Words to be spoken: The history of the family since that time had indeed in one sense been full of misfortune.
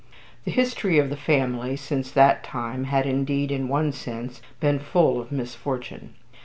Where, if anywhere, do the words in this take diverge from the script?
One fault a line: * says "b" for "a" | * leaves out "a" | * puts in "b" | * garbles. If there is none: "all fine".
all fine